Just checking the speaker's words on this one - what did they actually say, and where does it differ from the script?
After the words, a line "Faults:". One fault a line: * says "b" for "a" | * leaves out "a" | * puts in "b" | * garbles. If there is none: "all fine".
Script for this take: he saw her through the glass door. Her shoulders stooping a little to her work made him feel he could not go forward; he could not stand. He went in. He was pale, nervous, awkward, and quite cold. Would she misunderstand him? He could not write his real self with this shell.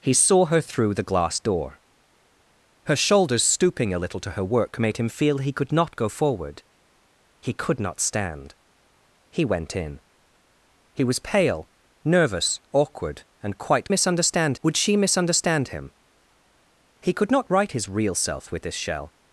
he saw her through the glass door. Her shoulders stooping a little to her work made him feel he could not go forward; he could not stand. He went in. He was pale, nervous, awkward, and quite misunderstand. Would she misunderstand him? He could not write his real self with this shell.
Faults:
* says "misunderstand" for "cold"